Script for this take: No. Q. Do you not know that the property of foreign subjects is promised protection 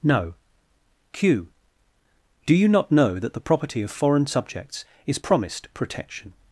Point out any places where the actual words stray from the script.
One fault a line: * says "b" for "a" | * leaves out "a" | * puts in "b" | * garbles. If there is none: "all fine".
all fine